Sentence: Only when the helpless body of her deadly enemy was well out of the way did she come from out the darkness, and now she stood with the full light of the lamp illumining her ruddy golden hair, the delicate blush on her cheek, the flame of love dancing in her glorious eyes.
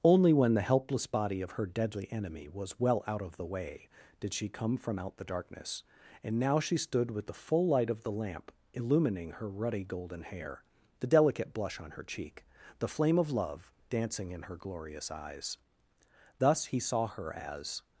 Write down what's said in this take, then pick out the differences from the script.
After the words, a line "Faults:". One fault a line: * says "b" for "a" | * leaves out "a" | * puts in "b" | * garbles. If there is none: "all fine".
Only when the helpless body of her deadly enemy was well out of the way did she come from out the darkness, and now she stood with the full light of the lamp illumining her ruddy golden hair, the delicate blush on her cheek, the flame of love dancing in her glorious eyes. Thus he saw her as
Faults:
* puts in "Thus he saw her as"